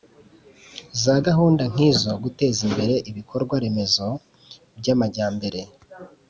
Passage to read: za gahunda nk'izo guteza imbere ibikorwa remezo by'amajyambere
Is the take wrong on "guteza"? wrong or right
right